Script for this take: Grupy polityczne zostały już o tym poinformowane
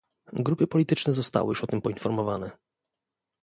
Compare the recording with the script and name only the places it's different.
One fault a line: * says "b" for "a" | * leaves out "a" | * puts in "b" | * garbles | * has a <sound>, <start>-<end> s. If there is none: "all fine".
all fine